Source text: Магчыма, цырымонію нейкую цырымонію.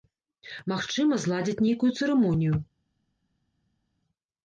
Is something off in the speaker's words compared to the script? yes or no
yes